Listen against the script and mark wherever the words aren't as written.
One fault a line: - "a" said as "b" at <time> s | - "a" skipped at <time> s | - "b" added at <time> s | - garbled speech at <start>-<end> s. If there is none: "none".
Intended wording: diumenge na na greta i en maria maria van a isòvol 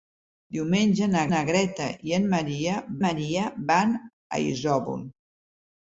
none